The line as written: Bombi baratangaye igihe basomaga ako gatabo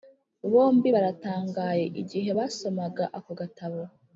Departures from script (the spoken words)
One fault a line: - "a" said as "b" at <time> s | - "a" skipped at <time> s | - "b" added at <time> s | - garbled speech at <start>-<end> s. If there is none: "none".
none